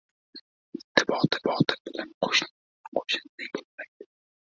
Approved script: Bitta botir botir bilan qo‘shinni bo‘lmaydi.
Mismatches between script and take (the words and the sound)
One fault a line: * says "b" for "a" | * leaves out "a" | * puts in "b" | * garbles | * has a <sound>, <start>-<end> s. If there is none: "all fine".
all fine